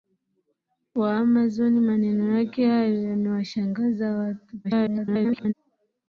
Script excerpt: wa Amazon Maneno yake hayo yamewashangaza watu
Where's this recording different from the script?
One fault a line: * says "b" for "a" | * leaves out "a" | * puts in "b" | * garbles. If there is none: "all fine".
* garbles